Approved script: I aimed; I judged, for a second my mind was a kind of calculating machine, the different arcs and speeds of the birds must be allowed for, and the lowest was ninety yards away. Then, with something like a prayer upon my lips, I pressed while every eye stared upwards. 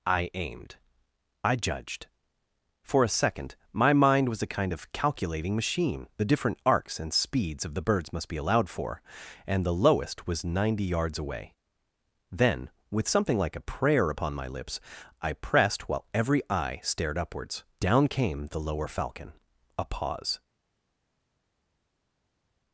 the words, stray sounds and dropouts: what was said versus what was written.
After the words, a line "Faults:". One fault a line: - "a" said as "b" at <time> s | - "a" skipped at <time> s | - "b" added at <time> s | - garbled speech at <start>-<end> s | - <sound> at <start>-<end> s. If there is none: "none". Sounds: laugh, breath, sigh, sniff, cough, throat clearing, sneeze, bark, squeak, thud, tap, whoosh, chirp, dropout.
I aimed; I judged, for a second my mind was a kind of calculating machine, the different arcs and speeds of the birds must be allowed for, and the lowest was ninety yards away. Then, with something like a prayer upon my lips, I pressed while every eye stared upwards. Down came the lower falcon; a pause
Faults:
- "Down came the lower falcon a pause" added at 17.8 s